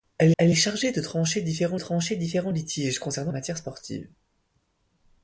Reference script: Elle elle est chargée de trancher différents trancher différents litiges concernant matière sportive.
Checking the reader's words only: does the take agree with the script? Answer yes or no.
yes